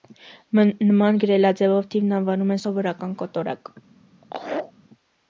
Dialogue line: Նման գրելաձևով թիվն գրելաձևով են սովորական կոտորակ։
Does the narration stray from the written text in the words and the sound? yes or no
yes